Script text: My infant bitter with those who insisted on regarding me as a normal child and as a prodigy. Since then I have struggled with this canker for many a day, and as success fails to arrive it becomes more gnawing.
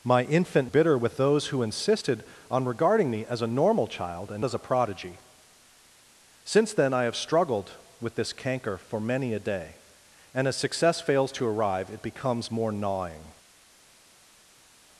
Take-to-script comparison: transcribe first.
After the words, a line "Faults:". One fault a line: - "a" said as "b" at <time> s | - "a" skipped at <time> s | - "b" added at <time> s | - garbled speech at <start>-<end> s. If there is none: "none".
My infant bitter with those who insisted on regarding me as a normal child and as a prodigy. Since then I have struggled with this canker for many a day, and as success fails to arrive it becomes more gnawing.
Faults:
none